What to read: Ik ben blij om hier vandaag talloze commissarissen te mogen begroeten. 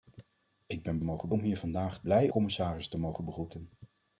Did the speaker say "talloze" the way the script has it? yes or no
no